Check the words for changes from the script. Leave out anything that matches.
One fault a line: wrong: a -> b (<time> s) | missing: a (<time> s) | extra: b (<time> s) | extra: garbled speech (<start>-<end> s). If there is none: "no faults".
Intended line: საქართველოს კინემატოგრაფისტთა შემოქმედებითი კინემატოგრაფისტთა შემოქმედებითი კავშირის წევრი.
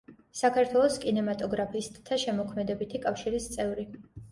missing: კინემატოგრაფისტთა შემოქმედებითი (3.1 s)